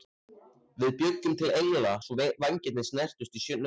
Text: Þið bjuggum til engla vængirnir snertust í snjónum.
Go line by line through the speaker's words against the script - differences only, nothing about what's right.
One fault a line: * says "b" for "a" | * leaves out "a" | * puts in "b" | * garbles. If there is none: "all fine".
* says "Við" for "Þið"
* puts in "svo"